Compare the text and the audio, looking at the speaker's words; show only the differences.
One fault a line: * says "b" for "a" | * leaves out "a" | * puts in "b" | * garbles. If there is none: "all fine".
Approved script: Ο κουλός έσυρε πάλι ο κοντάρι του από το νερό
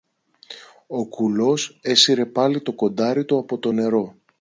* says "το" for "ο"